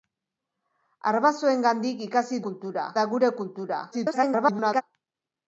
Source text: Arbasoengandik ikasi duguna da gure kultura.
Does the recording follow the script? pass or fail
fail